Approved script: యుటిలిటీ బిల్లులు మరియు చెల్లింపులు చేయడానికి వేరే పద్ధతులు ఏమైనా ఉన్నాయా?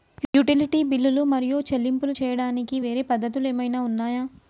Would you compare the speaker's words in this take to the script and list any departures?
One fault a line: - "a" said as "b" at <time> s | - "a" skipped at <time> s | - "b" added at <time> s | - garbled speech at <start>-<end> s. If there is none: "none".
none